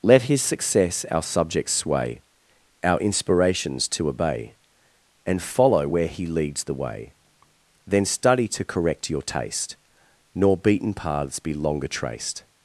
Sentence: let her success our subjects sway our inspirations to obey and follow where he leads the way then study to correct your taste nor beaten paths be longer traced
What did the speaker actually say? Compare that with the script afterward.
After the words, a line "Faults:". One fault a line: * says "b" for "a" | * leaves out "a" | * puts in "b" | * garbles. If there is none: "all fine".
let his success our subjects sway our inspirations to obey and follow where he leads the way then study to correct your taste nor beaten paths be longer traced
Faults:
* says "his" for "her"